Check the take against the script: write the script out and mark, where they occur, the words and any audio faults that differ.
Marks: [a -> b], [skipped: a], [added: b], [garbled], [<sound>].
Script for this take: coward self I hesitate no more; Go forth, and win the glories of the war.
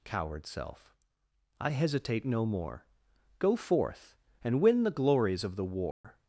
coward self I hesitate no more; Go forth, and win the glories of the war. [dropout]